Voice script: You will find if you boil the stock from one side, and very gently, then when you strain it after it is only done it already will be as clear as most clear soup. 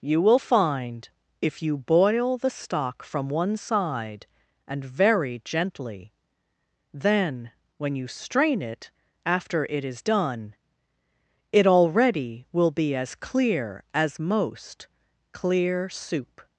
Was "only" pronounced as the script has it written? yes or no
no